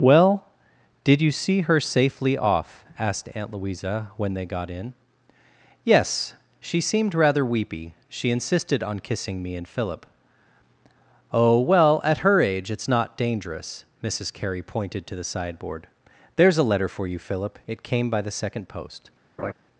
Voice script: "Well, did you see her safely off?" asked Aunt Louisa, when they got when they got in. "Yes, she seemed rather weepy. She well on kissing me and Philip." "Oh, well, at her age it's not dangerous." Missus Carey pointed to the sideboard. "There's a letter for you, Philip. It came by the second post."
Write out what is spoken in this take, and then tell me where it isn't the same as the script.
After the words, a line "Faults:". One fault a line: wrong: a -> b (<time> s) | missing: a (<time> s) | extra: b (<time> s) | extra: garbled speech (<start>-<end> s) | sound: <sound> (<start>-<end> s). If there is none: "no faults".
"Well, did you see her safely off?" asked Aunt Louisa, when they got in. "Yes, she seemed rather weepy. She insisted on kissing me and Philip." "Oh, well, at her age it's not dangerous." Missus Carey pointed to the sideboard. "There's a letter for you, Philip. It came by the second post."
Faults:
missing: when they got (4.7 s)
wrong: well -> insisted (8.3 s)
sound: laugh (19.4-19.5 s)